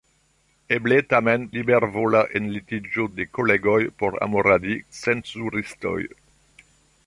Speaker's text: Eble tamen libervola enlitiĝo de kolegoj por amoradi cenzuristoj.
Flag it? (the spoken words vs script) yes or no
no